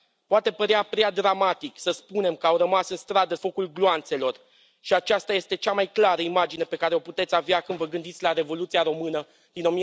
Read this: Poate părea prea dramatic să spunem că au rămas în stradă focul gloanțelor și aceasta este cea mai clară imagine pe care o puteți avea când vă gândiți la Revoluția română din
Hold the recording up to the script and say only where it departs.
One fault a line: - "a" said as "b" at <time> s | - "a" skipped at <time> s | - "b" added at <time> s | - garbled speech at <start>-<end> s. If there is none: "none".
none